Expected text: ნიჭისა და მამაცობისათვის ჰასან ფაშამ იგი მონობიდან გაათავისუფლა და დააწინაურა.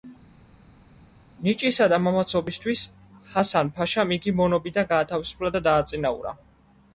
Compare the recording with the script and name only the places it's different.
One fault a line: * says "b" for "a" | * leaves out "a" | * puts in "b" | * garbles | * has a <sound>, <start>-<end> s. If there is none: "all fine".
all fine